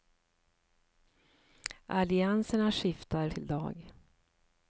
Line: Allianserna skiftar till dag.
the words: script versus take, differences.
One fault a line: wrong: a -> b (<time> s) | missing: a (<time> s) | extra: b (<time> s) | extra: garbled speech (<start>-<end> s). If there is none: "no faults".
no faults